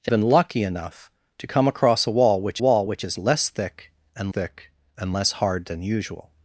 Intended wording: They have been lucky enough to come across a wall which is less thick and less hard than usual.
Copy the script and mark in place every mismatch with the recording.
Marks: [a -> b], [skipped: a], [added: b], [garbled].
They [skipped: have] been lucky enough to come across a wall which [added: wall which] is less thick and [added: thick and] less hard than usual.